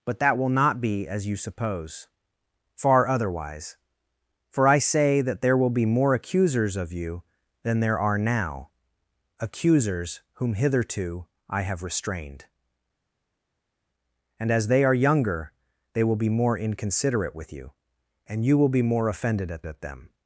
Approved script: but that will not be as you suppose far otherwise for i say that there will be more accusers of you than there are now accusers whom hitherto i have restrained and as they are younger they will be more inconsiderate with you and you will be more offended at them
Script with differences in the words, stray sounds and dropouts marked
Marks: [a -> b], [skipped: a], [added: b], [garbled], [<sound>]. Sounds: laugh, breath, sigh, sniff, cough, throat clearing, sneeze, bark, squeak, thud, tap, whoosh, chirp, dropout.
but that will not be as you suppose far otherwise for i say that there will be more accusers of you than there are now accusers whom hitherto i have restrained and as they are younger they will be more inconsiderate with you and you will be more offended at [added: at] them